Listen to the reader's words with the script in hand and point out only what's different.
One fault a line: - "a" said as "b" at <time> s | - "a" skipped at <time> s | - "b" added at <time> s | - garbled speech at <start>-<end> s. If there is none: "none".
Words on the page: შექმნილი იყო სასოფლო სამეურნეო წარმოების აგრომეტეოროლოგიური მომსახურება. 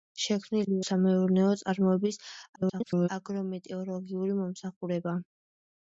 - "იყო სასოფლო" skipped at 0.8 s
- garbled speech at 2.6-3.1 s